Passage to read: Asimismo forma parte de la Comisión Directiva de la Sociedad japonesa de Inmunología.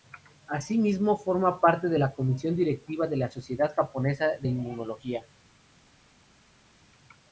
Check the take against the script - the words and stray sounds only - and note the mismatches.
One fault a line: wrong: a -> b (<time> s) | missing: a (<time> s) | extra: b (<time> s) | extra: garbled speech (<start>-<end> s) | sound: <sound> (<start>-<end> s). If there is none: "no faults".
no faults